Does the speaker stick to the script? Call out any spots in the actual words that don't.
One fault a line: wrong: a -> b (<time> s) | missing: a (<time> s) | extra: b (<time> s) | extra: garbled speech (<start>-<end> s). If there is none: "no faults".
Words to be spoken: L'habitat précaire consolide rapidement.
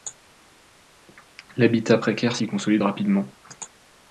extra: s'y (2.3 s)